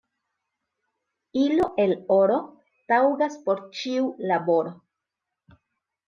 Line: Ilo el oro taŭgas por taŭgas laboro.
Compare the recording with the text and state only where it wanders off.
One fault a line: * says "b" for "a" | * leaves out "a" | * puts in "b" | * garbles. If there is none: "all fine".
* says "ĉiu" for "taŭgas"